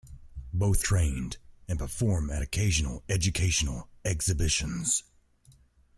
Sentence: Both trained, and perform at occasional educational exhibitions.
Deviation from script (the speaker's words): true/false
false